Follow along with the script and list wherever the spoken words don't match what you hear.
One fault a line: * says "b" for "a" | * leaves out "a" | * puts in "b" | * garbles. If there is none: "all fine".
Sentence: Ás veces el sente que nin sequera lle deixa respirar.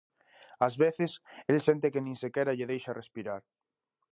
all fine